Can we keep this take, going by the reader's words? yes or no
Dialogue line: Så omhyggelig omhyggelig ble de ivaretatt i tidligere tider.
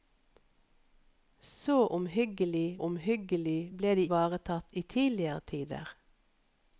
yes